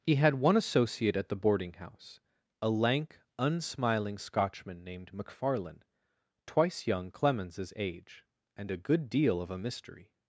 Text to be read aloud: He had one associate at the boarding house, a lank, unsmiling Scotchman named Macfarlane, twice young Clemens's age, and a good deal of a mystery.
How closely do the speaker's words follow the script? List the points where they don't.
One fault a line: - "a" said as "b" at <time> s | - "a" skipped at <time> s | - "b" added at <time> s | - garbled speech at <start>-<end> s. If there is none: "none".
none